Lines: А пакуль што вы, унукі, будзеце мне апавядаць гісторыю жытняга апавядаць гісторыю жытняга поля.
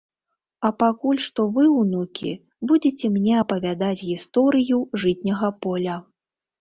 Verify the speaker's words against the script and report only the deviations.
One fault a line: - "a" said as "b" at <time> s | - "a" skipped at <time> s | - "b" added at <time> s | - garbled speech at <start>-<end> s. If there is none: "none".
- "апавядаць гісторыю жытняга" skipped at 5.5 s